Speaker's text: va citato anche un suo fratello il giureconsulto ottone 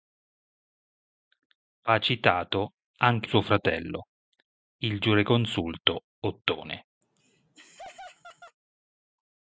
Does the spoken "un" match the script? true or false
false